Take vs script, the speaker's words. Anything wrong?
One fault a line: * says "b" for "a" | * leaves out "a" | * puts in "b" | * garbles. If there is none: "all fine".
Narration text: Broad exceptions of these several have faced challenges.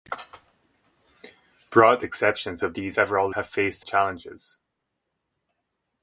all fine